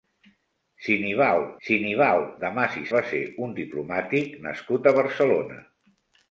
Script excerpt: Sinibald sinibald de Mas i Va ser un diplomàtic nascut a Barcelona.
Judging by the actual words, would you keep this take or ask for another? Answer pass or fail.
pass